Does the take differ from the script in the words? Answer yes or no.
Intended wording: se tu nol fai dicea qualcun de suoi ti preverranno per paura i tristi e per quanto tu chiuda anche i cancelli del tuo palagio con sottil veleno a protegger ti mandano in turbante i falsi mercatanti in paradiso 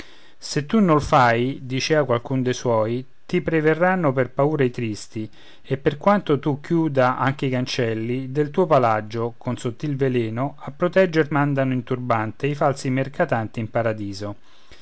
yes